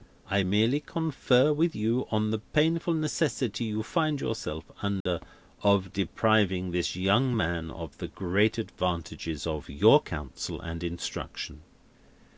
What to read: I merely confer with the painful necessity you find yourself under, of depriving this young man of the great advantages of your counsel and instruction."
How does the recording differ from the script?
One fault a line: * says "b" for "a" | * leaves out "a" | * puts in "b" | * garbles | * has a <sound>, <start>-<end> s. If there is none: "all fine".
* puts in "you on"
* has a dropout, 5.0-5.1 s